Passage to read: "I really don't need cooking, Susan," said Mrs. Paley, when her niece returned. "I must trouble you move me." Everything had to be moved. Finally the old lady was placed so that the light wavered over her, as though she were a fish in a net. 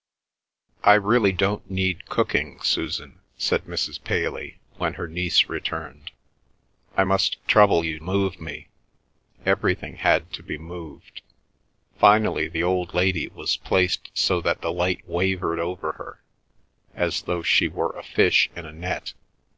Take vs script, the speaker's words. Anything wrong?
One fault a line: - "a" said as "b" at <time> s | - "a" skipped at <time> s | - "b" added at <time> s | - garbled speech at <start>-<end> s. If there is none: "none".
none